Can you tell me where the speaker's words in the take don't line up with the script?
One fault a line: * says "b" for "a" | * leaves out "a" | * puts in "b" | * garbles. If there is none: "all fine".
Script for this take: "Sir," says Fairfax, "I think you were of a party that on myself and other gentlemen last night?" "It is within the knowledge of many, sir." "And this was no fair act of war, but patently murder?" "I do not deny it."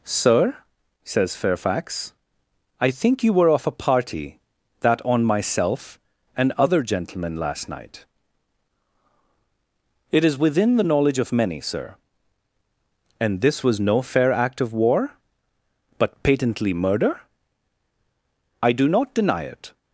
all fine